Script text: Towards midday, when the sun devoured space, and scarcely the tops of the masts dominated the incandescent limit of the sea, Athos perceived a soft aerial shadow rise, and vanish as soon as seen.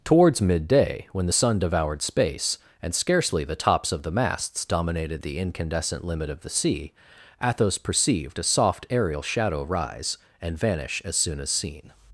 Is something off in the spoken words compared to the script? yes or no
no